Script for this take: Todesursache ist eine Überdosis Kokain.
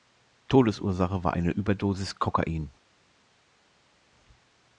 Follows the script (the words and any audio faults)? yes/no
no